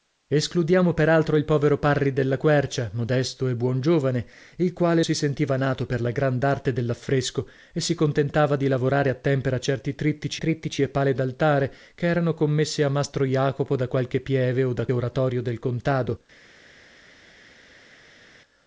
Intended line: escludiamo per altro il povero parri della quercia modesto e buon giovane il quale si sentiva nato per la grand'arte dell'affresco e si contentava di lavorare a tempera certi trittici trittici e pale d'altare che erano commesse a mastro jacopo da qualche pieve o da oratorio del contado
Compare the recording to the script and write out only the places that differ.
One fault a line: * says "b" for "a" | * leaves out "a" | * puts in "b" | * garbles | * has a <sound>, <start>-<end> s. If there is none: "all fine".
all fine